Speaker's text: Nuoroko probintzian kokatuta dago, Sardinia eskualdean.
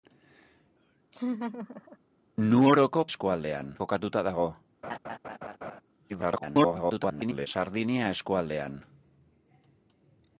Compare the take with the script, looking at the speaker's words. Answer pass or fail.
fail